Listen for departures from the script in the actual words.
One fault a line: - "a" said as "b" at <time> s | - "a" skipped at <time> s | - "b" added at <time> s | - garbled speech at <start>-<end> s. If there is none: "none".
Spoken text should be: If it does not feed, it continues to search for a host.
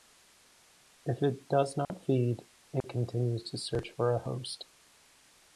none